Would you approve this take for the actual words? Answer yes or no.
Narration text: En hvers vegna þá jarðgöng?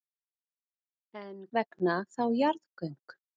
no